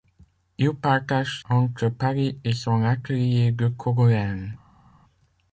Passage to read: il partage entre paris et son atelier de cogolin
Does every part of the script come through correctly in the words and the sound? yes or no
yes